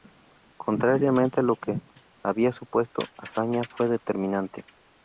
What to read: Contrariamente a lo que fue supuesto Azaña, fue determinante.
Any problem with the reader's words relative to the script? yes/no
yes